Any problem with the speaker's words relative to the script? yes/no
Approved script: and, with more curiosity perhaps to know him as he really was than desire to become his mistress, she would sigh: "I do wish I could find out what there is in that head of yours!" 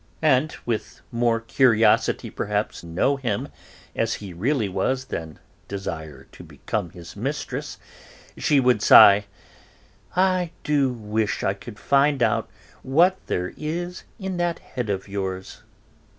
yes